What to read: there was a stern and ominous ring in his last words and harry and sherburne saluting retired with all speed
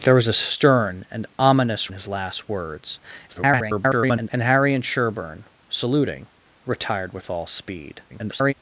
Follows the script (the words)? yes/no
no